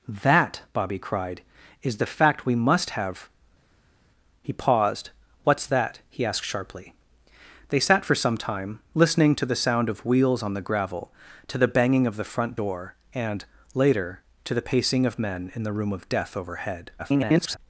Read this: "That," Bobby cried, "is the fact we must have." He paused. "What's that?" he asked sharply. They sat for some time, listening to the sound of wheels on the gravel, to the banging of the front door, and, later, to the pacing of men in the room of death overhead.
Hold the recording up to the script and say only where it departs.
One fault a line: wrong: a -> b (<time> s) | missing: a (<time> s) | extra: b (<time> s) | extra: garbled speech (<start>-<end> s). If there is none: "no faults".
extra: garbled speech (17.0-17.6 s)